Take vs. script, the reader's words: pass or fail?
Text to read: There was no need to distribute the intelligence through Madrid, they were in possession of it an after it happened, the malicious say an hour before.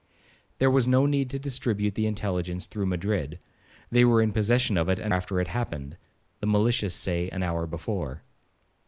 pass